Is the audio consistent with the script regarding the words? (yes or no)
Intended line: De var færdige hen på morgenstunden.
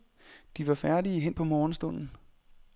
yes